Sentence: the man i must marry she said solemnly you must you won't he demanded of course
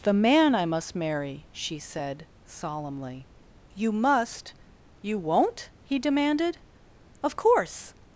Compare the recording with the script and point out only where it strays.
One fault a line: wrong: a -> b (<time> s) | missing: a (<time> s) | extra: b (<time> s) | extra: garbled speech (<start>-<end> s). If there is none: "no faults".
no faults